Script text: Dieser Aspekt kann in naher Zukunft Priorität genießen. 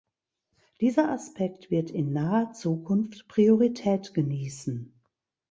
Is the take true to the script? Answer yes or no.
no